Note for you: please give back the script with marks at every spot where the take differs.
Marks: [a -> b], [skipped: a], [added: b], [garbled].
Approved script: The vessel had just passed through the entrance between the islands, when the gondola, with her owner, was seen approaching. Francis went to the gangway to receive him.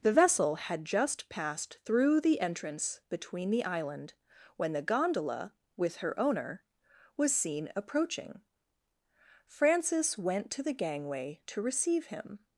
The vessel had just passed through the entrance between the [islands, -> island] when the gondola, with her owner, was seen approaching. Francis went to the gangway to receive him.